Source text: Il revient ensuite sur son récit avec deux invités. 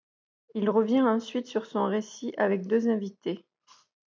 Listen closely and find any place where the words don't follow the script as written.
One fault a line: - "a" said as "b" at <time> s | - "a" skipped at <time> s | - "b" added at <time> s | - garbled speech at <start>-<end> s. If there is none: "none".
none